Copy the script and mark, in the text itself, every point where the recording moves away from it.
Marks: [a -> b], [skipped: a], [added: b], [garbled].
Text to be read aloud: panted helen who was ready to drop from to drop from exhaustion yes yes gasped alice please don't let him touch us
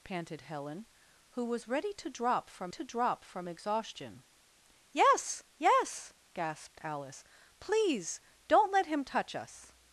panted helen who was ready to drop from to drop from exhaustion yes yes gasped alice please don't let him touch us